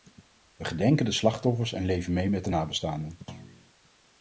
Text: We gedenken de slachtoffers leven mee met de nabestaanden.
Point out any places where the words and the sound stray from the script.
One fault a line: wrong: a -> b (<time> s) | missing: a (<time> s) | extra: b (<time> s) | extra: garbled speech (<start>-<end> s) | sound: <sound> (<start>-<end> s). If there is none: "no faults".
extra: en (1.7 s)
sound: thud (3.3-3.7 s)